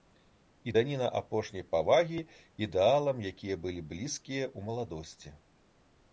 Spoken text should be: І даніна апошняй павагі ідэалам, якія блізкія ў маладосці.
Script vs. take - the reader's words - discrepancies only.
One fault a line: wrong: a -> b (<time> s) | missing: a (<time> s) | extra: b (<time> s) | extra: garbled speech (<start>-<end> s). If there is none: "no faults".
extra: былі (3.7 s)